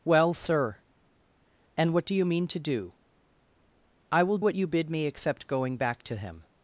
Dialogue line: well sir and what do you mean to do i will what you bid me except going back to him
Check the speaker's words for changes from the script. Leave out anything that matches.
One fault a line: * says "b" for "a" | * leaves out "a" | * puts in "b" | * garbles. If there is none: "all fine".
all fine